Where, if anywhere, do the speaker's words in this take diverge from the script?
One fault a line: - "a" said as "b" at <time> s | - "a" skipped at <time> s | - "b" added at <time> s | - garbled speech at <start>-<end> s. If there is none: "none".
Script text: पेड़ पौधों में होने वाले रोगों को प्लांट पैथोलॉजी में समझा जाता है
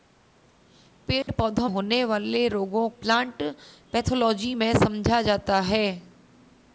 - "में" skipped at 1.7 s
- "को" skipped at 2.9 s